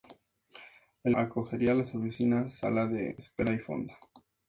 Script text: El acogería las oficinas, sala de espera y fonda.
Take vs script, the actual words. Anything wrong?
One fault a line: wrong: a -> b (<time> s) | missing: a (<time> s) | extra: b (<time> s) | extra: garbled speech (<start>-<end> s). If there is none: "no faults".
no faults